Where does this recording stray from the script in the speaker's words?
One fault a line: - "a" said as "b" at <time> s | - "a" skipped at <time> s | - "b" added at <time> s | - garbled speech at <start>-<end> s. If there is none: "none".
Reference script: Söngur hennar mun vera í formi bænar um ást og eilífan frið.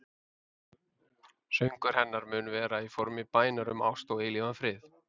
none